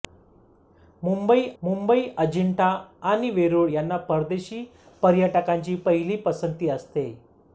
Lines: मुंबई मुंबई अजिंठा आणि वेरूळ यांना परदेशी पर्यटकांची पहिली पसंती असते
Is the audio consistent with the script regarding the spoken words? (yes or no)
yes